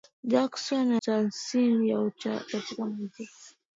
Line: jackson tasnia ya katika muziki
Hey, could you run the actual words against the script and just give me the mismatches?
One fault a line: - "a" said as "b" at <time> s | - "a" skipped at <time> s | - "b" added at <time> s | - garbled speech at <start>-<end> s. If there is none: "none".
none